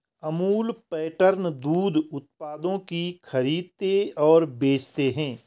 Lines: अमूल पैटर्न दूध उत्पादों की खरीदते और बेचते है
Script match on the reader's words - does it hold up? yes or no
yes